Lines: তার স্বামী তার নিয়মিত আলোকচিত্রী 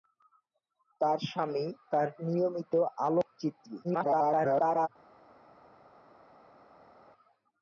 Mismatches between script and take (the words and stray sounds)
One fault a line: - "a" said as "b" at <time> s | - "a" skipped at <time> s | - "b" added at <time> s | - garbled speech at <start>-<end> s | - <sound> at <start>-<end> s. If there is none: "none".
- garbled speech at 3.8-4.9 s